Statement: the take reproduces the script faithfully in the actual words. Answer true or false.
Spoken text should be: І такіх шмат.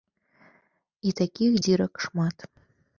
false